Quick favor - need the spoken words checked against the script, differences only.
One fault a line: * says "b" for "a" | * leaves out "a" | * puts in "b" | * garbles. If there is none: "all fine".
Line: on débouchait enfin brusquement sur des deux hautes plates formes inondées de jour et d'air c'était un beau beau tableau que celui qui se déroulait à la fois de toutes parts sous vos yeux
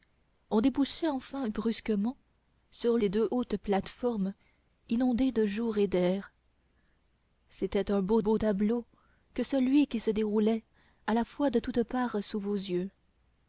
all fine